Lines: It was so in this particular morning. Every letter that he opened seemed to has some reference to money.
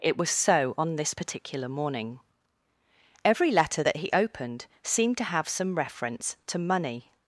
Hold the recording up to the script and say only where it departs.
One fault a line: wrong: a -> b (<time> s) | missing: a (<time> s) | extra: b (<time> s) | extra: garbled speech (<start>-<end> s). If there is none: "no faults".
wrong: in -> on (0.8 s)
wrong: has -> have (5.2 s)